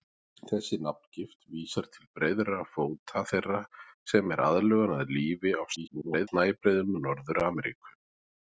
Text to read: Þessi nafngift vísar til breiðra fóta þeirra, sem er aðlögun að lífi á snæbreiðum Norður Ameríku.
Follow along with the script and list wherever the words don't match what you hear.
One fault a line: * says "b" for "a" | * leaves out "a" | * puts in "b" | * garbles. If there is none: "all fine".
* garbles